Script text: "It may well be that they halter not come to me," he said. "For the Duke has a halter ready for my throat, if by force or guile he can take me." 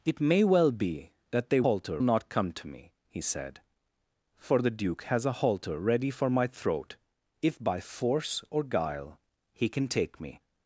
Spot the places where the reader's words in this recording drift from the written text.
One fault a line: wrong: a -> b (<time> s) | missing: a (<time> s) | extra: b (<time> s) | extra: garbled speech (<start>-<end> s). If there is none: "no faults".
no faults